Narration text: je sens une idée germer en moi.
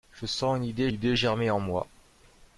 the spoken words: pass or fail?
fail